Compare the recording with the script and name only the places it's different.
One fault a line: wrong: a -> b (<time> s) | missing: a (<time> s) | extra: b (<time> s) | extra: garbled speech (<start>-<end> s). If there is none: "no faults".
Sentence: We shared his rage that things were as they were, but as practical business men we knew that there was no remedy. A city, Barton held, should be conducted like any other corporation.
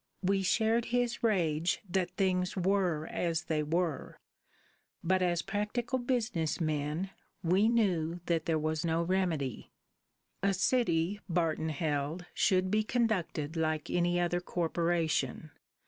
no faults